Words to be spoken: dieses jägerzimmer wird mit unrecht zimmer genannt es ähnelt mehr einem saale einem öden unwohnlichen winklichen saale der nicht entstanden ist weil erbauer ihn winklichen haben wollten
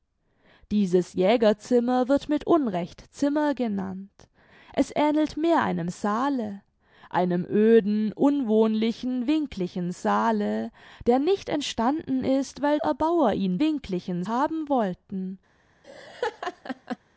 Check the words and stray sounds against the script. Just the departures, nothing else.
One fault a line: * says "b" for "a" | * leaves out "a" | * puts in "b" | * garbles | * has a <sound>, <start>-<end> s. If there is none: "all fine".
* has a laugh, 15.8-17.0 s